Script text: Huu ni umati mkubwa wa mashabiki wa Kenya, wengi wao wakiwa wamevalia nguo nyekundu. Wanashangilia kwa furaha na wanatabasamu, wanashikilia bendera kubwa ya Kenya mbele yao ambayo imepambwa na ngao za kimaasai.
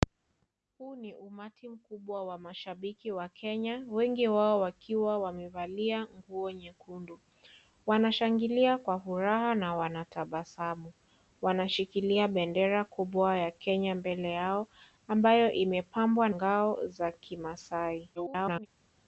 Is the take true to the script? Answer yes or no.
no